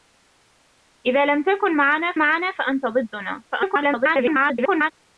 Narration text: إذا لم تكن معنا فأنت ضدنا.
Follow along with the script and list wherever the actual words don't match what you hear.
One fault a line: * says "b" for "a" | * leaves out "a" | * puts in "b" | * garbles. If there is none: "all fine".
* puts in "معنا"
* garbles